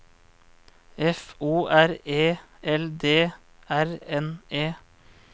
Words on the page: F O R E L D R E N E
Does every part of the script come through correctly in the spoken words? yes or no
no